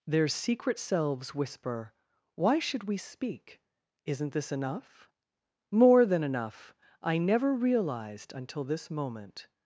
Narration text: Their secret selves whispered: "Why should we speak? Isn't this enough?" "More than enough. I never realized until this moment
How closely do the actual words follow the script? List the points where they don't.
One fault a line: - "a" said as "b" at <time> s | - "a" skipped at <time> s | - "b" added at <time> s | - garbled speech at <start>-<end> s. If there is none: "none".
- "whispered" said as "whisper" at 1.4 s